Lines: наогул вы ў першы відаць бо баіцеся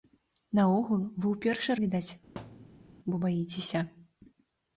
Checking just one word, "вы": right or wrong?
right